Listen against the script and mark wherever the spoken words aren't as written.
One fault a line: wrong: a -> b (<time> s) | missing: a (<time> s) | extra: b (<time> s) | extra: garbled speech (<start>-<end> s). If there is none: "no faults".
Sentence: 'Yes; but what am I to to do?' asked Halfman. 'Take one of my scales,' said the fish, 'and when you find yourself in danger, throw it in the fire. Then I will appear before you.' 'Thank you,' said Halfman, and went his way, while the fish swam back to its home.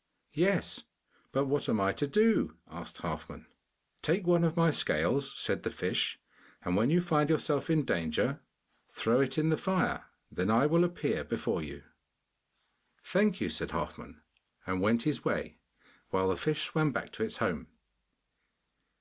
missing: to (2.1 s)